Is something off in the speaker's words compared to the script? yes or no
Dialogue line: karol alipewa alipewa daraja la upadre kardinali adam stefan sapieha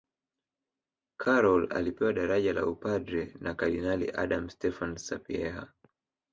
yes